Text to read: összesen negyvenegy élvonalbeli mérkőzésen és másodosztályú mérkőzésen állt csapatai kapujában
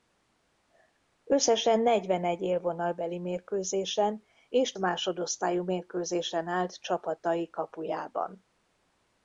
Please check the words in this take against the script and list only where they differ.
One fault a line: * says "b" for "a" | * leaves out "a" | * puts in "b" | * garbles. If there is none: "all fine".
all fine